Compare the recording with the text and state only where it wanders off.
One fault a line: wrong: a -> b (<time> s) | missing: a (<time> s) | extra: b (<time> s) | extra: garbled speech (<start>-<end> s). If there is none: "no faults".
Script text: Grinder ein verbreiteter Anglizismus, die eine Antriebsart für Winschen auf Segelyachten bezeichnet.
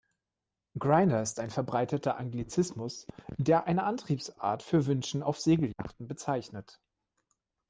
extra: ist (1.2 s)
wrong: die -> der (3.4 s)